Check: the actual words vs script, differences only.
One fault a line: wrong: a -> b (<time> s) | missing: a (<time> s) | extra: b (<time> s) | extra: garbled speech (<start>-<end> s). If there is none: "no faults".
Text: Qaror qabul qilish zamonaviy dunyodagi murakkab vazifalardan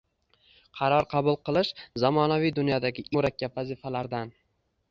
no faults